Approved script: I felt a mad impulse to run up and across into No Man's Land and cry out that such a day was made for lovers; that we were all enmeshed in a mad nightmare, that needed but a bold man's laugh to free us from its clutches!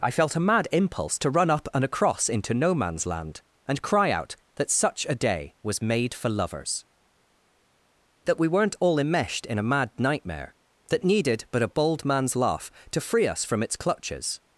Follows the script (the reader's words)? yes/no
no